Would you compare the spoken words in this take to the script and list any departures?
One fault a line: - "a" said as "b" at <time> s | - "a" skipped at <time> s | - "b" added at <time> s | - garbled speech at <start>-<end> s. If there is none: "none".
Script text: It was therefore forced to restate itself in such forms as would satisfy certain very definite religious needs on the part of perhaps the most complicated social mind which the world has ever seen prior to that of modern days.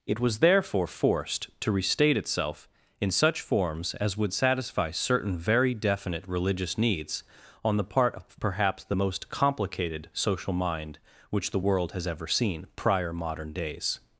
- "to that of" skipped at 13.1 s